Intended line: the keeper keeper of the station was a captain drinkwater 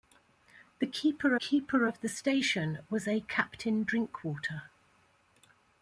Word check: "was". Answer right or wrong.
right